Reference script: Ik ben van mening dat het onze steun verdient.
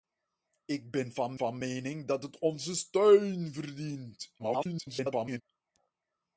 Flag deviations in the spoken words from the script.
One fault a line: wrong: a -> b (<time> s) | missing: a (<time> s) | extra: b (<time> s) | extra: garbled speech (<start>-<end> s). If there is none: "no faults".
extra: van (1.3 s)
extra: garbled speech (4.4-5.4 s)